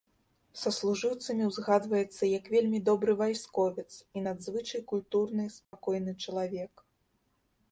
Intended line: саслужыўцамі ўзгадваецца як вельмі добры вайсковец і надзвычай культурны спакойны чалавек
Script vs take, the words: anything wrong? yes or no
no